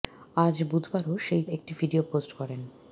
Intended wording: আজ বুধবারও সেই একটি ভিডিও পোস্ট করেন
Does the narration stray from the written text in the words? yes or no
no